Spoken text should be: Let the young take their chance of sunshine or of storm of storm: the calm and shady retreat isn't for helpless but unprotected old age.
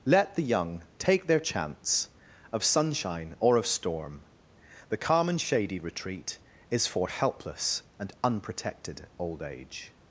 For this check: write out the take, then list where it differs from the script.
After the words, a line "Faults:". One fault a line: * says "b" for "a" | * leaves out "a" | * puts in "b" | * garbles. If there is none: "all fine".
Let the young take their chance of sunshine or of storm: the calm and shady retreat is for helpless and unprotected old age.
Faults:
* leaves out "of storm"
* says "is" for "isn't"
* says "and" for "but"